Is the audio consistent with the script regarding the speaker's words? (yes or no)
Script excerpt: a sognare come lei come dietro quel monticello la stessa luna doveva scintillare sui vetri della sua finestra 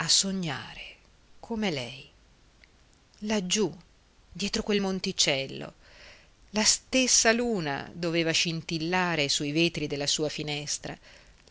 no